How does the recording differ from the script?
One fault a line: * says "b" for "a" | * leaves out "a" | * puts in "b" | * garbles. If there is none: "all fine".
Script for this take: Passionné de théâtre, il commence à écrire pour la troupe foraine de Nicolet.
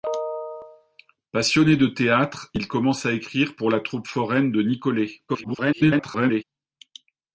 * garbles